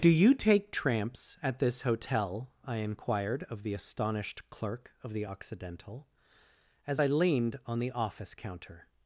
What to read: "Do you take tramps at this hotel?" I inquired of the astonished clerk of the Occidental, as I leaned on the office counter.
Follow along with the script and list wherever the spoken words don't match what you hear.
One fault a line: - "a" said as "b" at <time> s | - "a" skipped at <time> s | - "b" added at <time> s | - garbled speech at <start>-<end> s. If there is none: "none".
none